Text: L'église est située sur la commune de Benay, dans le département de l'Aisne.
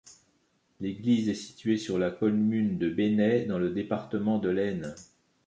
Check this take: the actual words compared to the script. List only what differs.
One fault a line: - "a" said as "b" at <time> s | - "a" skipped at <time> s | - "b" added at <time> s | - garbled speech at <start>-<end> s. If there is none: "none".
none